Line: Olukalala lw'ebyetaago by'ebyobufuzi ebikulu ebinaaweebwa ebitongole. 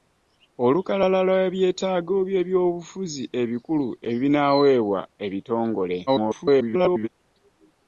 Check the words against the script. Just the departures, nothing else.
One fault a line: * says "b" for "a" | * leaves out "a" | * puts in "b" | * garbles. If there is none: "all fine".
* garbles